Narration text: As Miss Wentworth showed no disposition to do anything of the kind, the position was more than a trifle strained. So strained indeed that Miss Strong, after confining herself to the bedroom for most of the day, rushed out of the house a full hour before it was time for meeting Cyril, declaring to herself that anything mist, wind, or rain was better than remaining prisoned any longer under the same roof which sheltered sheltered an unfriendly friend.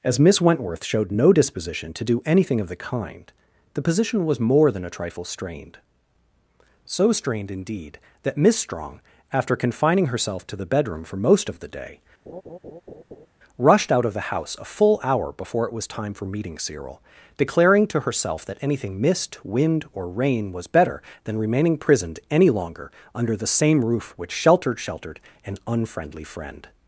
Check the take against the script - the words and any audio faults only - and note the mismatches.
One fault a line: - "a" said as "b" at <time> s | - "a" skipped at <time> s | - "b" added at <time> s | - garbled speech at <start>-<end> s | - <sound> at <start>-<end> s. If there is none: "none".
- laugh at 12.3-13.3 s